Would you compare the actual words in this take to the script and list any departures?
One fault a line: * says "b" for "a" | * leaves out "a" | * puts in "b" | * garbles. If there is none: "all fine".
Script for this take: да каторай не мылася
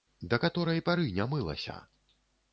* puts in "пары"